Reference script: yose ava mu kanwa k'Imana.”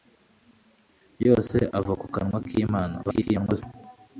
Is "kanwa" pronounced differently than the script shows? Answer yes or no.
no